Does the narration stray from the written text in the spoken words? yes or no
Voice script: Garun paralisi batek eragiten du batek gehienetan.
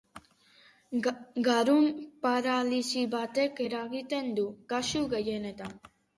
yes